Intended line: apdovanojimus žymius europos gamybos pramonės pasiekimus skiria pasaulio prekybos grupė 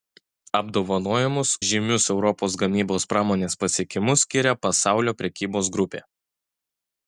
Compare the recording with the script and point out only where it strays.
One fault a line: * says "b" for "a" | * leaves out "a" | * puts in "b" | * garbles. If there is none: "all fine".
all fine